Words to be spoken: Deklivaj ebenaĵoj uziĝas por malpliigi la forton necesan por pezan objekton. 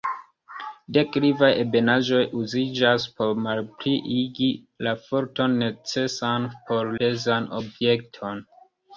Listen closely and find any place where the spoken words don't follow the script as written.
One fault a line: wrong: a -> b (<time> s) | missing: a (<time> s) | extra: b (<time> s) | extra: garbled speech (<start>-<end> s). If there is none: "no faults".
no faults